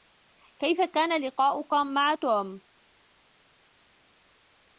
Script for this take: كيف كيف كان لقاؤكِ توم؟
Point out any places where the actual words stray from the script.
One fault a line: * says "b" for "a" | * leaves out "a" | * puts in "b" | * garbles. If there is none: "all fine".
* leaves out "كيف"
* puts in "مع"